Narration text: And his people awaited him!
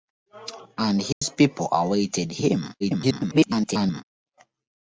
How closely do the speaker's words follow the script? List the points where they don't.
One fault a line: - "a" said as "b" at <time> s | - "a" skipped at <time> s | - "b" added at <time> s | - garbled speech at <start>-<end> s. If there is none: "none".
- garbled speech at 2.8-4.0 s